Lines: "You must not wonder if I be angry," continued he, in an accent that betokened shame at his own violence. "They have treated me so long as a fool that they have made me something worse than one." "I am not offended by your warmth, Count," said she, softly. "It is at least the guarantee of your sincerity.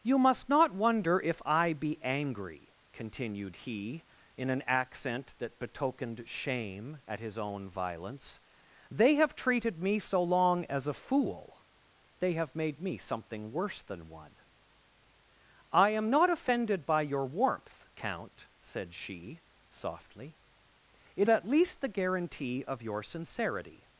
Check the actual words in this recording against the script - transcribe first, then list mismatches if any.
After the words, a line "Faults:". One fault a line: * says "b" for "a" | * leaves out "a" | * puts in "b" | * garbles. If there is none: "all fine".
"You must not wonder if I be angry," continued he, in an accent that betokened shame at his own violence. "They have treated me so long as a fool they have made me something worse than one." "I am not offended by your warmth, Count," said she, softly. "It at least the guarantee of your sincerity.
Faults:
* leaves out "that"
* leaves out "is"